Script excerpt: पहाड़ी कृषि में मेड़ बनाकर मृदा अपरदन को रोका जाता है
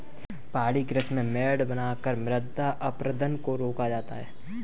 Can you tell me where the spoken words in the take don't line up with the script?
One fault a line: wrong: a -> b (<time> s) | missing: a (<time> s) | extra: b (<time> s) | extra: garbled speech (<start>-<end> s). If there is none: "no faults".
no faults